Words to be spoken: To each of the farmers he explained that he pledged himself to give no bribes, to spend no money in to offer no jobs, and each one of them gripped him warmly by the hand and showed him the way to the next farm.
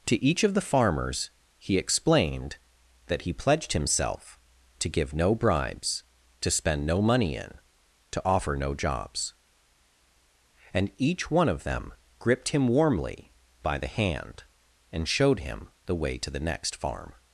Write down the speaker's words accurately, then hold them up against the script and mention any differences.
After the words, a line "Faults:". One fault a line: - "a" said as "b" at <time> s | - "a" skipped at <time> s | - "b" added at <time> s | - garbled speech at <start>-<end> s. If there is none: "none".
To each of the farmers he explained that he pledged himself to give no bribes, to spend no money in to offer no jobs, and each one of them gripped him warmly by the hand and showed him the way to the next farm.
Faults:
none